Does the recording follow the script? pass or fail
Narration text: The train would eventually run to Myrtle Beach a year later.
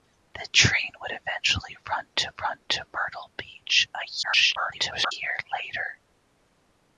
fail